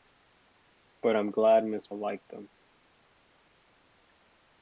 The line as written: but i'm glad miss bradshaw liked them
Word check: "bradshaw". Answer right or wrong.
wrong